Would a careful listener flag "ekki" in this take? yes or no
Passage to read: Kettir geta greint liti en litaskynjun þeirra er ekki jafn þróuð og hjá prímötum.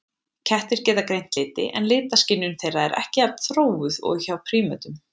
no